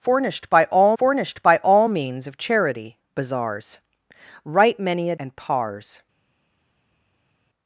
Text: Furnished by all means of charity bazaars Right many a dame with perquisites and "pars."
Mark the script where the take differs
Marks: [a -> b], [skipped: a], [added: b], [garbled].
Furnished by all [added: furnished by all] means of charity bazaars Right many a [skipped: dame with perquisites] and "pars."